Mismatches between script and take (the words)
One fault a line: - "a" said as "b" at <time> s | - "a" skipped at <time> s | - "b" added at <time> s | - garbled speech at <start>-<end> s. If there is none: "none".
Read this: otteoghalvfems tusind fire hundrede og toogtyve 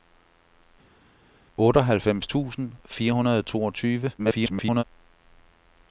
- garbled speech at 4.2-4.8 s